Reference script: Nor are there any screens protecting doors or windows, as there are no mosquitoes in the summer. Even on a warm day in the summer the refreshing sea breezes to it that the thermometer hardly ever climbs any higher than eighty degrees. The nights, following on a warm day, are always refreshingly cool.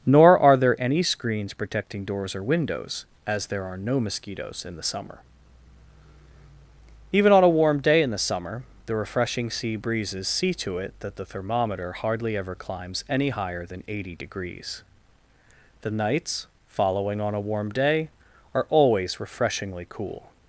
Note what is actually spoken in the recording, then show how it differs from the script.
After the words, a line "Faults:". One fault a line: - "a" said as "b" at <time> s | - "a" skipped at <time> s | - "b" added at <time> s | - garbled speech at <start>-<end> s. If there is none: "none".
Nor are there any screens protecting doors or windows, as there are no mosquitoes in the summer. Even on a warm day in the summer the refreshing sea breezes see to it that the thermometer hardly ever climbs any higher than eighty degrees. The nights, following on a warm day, are always refreshingly cool.
Faults:
- "see" added at 10.3 s